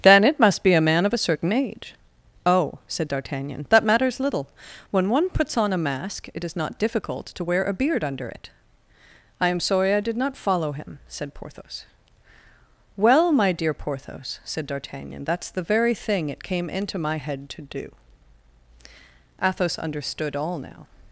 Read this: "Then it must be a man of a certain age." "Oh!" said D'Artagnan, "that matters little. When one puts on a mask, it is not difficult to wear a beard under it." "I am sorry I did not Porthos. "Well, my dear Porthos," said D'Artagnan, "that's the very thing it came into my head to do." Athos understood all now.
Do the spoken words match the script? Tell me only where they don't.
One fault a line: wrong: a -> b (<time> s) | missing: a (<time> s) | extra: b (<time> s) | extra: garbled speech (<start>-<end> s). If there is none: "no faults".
extra: follow him said (10.4 s)